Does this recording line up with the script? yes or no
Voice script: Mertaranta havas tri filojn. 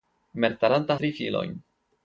no